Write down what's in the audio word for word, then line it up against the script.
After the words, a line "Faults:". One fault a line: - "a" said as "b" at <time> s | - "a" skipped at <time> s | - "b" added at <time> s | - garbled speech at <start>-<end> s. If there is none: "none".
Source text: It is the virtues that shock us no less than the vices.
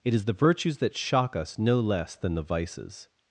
It is the virtues that shock us no less than the vices.
Faults:
none